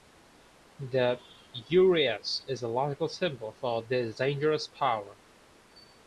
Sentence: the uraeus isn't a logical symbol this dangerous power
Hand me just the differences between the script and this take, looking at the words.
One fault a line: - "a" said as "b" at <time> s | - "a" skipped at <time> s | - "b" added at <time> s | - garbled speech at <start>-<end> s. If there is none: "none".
- "isn't" said as "is" at 2.5 s
- "for" added at 3.5 s